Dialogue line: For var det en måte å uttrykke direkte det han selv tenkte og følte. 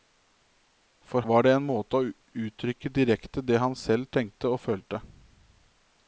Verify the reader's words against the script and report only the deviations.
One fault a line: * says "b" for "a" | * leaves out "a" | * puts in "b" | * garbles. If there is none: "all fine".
all fine